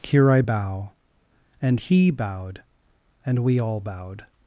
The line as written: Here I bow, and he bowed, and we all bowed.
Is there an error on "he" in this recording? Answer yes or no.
no